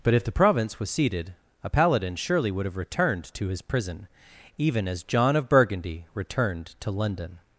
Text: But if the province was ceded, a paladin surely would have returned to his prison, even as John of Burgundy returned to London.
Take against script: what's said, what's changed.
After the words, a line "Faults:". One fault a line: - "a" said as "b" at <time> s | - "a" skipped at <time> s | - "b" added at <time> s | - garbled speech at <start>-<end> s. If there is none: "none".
But if the province was ceded, a paladin surely would have returned to his prison, even as John of Burgundy returned to London.
Faults:
none